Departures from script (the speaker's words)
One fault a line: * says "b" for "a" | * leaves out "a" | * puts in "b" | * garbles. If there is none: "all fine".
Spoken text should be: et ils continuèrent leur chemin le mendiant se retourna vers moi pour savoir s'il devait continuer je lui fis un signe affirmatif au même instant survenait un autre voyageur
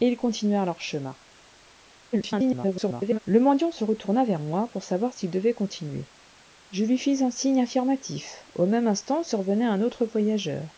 * garbles